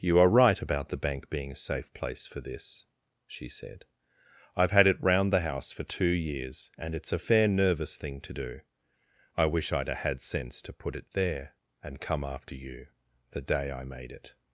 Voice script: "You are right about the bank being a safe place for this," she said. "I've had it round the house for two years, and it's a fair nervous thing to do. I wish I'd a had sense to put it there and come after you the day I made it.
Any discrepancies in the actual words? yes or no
no